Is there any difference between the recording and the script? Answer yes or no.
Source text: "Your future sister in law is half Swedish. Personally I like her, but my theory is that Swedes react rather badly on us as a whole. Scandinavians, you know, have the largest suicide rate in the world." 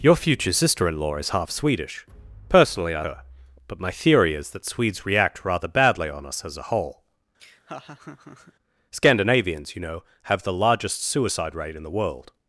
yes